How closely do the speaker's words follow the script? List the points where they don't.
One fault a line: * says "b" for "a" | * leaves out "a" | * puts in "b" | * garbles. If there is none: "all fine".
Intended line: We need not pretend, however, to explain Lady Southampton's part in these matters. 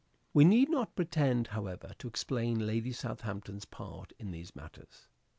all fine